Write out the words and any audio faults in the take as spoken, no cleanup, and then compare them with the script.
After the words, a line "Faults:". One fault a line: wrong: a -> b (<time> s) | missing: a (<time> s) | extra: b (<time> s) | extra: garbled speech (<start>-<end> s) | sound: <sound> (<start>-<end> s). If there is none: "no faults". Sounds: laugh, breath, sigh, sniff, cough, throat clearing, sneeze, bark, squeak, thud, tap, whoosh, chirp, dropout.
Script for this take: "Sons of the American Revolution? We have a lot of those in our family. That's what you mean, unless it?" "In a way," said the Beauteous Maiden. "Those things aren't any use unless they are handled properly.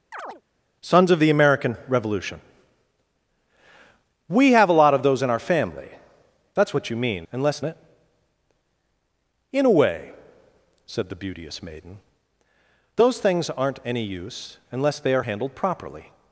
"Sons of the American Revolution? We have a lot of those in our family. That's what you mean, unless it?" "In a way," said the Beauteous Maiden. "Those things aren't any use unless they are handled properly.
Faults:
sound: chirp (0.1-0.4 s)